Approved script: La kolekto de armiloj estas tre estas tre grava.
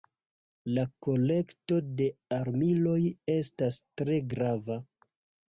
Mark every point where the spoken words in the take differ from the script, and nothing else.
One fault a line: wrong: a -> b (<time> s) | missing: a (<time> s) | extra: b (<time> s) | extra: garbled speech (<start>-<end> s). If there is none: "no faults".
missing: estas tre (4.2 s)